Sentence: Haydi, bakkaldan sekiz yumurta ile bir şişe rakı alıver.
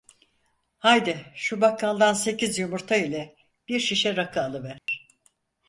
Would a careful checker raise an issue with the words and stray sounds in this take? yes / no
yes